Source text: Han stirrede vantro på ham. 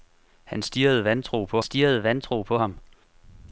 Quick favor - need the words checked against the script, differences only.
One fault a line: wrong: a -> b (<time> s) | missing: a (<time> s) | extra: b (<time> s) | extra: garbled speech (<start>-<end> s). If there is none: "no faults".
extra: stirrede vantro på (1.6 s)